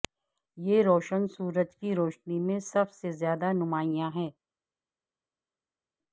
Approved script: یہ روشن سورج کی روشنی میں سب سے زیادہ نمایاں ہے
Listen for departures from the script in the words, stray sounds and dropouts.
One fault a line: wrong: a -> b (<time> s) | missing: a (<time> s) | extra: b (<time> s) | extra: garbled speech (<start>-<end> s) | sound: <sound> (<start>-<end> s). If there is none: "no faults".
no faults